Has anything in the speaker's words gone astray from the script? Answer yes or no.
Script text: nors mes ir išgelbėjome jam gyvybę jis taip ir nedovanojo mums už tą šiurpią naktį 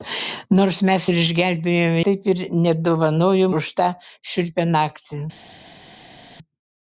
yes